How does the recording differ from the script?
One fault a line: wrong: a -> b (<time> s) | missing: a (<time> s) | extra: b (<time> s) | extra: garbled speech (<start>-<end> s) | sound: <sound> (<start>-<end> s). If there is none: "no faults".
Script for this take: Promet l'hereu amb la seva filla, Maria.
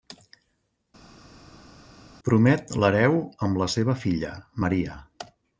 no faults